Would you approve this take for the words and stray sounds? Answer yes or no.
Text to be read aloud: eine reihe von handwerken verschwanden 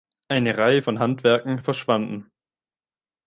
yes